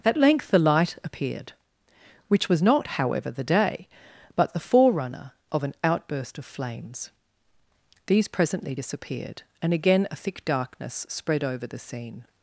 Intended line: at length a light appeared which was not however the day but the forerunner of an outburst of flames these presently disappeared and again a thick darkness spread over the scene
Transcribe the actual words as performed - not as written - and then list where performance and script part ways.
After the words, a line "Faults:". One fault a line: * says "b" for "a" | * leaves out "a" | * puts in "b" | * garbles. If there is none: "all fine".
at length the light appeared which was not however the day but the forerunner of an outburst of flames these presently disappeared and again a thick darkness spread over the scene
Faults:
* says "the" for "a"